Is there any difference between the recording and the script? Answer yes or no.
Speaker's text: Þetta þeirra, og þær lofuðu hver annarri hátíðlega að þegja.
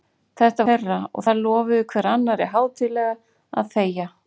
no